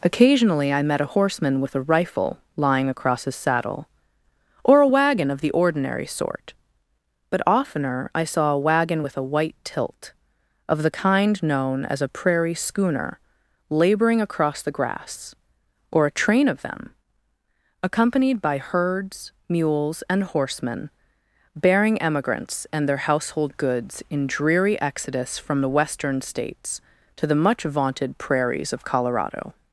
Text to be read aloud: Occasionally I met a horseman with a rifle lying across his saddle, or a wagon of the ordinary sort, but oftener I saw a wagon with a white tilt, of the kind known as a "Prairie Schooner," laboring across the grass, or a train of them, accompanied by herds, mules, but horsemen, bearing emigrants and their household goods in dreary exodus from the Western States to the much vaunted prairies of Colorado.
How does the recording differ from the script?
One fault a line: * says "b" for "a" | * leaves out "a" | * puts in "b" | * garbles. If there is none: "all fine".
* says "and" for "but"